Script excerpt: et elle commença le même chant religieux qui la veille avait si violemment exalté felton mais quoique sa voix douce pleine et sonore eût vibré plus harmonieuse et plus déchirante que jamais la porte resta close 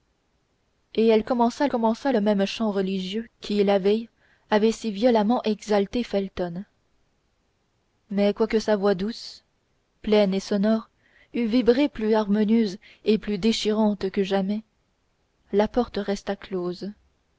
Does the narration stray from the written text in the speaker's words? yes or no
yes